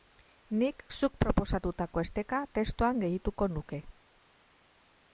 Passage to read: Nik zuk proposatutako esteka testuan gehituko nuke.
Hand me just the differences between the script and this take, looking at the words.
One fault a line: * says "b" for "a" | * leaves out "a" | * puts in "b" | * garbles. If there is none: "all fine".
all fine